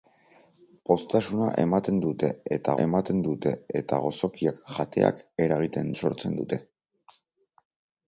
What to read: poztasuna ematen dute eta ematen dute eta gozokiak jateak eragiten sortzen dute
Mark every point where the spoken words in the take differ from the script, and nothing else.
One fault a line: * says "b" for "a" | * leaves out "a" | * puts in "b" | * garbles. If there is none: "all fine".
all fine